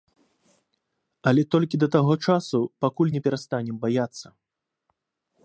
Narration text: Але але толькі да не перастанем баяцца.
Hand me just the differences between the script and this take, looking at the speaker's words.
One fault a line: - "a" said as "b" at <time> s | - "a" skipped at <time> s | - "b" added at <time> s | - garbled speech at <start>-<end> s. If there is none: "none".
- "але" skipped at 1.4 s
- "таго часу пакуль" added at 2.0 s